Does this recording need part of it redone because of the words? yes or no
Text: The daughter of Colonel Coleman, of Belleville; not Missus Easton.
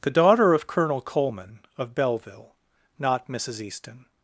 no